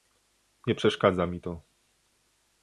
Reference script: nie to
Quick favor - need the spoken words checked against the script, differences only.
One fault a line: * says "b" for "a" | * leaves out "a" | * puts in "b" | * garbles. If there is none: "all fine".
* puts in "przeszkadza mi"